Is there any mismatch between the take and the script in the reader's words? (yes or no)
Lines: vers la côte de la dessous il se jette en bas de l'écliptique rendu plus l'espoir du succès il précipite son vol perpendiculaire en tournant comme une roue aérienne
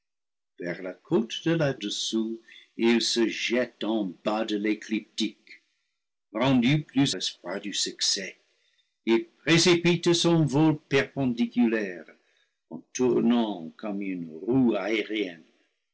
no